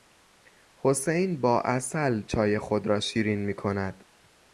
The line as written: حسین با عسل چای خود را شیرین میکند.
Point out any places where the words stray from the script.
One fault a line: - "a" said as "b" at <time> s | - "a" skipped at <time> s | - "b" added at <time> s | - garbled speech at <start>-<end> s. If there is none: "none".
none